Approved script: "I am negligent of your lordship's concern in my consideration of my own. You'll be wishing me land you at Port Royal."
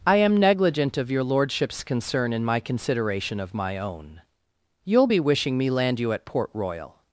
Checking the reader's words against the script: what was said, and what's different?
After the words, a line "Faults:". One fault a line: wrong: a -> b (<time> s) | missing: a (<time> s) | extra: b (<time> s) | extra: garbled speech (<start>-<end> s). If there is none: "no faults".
"I am negligent of your lordship's concern in my consideration of my own. You'll be wishing me land you at Port Royal."
Faults:
no faults